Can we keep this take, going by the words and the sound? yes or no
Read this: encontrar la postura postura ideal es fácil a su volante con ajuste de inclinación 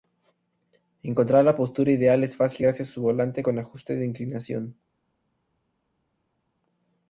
no